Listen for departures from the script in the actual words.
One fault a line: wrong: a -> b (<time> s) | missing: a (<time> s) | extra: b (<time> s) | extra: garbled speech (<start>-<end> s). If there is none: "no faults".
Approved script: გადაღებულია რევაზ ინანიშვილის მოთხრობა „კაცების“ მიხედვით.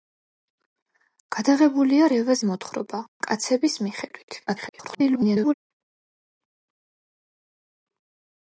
missing: ინანიშვილის (2.4 s)
extra: garbled speech (4.5-5.5 s)